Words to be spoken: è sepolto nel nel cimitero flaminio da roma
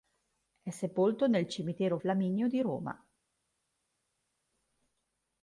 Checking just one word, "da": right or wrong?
wrong